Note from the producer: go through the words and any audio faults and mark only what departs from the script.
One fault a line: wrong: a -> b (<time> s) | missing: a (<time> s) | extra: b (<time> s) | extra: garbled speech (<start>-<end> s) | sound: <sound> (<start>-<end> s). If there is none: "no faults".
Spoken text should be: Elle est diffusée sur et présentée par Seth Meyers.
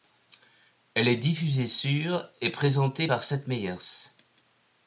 no faults